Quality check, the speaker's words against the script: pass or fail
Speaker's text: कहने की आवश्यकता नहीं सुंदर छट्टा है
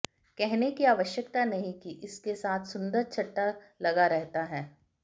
fail